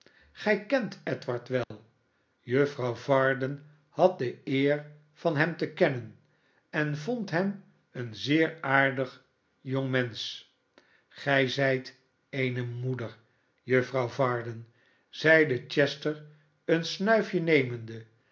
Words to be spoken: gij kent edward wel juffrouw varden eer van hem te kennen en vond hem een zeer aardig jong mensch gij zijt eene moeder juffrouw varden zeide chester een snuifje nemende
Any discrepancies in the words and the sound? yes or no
yes